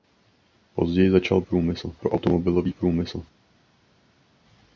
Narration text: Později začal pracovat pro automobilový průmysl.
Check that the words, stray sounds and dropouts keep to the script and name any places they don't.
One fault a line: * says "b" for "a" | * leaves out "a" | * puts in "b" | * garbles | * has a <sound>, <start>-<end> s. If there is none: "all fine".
* says "průmysl" for "pracovat"